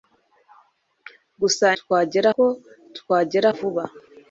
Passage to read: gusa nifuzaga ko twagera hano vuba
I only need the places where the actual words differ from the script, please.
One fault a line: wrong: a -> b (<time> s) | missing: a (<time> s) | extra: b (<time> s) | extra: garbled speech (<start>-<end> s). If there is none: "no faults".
wrong: nifuzaga -> twagera (1.8 s)
missing: hano (3.5 s)